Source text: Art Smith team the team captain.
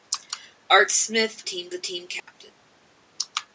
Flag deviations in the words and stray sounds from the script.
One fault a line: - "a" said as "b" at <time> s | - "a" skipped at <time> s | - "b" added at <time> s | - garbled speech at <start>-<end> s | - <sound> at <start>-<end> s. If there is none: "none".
- dropout at 2.2-2.3 s